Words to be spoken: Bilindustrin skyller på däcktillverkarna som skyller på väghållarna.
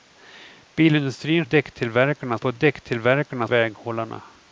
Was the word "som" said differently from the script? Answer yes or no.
yes